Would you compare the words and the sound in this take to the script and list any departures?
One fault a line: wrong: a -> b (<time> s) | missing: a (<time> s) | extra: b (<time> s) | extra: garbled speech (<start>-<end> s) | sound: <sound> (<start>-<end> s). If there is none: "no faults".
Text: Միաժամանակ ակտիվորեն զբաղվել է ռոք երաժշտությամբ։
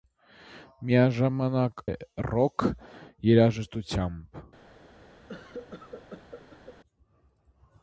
missing: ակտիվորեն զբաղվել (1.8 s)
sound: cough (5.3-6.8 s)